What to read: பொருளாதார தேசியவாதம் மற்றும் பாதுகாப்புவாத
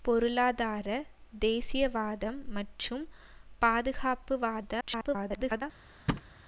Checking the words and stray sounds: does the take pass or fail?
fail